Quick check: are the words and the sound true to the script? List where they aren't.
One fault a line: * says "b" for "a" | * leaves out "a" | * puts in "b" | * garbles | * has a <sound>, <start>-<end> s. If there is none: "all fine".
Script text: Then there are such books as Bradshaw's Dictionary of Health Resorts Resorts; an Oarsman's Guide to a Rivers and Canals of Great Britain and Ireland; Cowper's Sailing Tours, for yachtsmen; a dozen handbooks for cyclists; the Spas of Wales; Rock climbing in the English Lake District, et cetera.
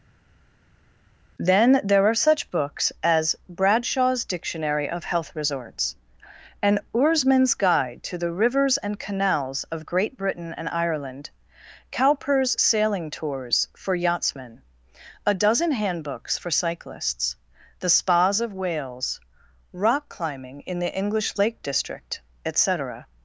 * leaves out "Resorts"
* says "the" for "a"